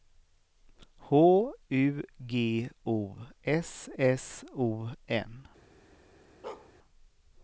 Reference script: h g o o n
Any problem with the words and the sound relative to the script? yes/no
yes